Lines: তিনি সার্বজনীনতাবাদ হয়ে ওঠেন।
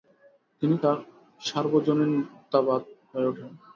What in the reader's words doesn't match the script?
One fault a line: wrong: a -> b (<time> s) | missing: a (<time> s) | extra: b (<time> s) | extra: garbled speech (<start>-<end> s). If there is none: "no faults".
extra: তার (0.8 s)